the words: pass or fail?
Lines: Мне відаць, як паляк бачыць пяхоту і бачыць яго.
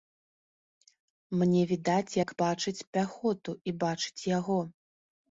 fail